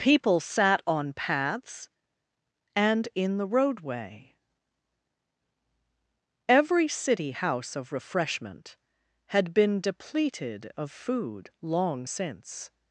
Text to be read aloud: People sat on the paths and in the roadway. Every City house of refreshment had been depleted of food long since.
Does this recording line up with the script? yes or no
no